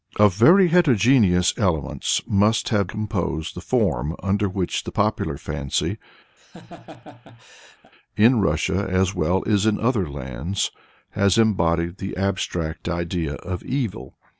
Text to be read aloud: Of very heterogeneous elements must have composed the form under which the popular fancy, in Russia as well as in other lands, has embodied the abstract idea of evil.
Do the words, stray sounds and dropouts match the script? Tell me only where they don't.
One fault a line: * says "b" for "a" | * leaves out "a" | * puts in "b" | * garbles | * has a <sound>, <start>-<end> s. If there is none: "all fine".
* has a laugh, 6.4-7.9 s